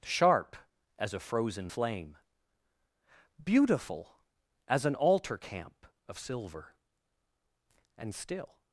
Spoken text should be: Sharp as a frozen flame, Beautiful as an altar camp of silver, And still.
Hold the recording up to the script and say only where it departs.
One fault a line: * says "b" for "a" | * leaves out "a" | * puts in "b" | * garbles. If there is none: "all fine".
all fine